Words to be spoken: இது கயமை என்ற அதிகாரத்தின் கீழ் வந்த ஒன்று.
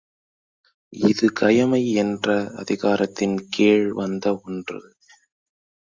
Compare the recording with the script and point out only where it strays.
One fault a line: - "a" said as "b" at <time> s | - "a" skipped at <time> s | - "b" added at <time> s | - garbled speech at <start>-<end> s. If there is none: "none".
none